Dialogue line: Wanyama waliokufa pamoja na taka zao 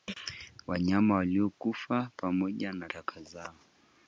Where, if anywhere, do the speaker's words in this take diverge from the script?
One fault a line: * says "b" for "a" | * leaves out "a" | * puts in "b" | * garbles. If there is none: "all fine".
all fine